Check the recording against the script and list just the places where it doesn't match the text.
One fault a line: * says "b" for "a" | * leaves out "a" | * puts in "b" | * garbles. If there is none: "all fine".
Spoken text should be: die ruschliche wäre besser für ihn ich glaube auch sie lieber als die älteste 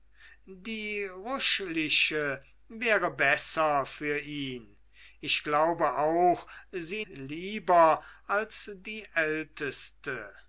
all fine